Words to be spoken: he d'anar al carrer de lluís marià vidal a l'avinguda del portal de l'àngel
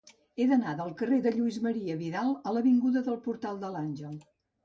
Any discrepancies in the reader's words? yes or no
yes